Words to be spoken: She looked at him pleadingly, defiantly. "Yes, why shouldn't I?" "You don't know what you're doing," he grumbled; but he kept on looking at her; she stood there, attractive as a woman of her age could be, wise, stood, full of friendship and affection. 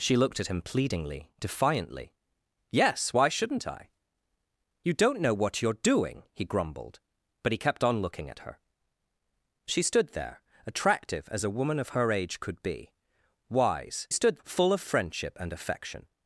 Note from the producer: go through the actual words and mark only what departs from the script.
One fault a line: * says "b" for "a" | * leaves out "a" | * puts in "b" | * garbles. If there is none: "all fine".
all fine